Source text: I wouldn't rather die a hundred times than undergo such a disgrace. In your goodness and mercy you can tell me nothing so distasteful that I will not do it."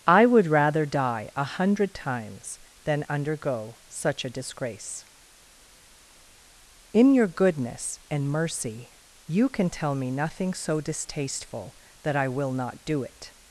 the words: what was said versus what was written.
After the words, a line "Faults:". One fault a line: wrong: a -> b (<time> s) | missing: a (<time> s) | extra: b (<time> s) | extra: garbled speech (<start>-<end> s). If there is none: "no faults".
I would rather die a hundred times than undergo such a disgrace. In your goodness and mercy you can tell me nothing so distasteful that I will not do it."
Faults:
wrong: wouldn't -> would (0.2 s)